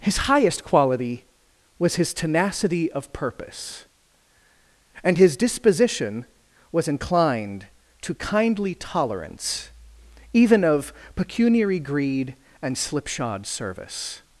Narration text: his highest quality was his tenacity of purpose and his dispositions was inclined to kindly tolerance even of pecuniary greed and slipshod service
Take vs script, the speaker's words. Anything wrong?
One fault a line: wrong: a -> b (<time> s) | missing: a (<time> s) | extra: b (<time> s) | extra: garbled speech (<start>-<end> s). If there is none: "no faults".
wrong: dispositions -> disposition (5.4 s)